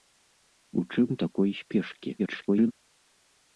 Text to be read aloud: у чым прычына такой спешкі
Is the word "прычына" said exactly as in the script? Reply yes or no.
no